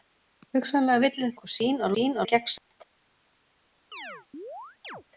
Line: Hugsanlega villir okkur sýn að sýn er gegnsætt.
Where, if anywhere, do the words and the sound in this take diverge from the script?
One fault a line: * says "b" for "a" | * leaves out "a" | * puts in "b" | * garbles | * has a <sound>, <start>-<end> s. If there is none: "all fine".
* has a dropout, 2.6-2.7 s
* has a chirp, 3.9-5.0 s